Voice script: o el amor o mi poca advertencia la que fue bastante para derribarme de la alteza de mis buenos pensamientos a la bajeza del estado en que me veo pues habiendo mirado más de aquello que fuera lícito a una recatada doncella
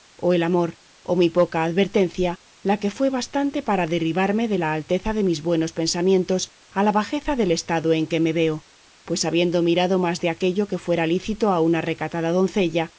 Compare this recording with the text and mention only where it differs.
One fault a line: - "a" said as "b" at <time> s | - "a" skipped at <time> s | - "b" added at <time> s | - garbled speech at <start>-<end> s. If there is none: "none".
none